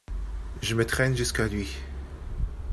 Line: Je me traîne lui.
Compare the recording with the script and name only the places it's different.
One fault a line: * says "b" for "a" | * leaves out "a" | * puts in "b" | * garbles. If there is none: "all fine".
* puts in "jusqu'à"